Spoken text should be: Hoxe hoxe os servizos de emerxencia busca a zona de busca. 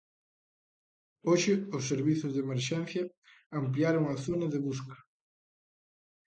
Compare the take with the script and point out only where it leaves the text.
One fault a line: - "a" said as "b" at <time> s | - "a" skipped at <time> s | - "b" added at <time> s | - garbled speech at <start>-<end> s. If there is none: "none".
- "hoxe" skipped at 1.5 s
- "busca" said as "ampliaron" at 3.6 s